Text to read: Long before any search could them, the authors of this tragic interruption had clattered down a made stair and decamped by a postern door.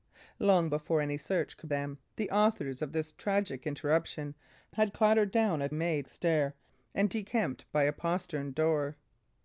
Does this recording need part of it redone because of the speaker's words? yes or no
no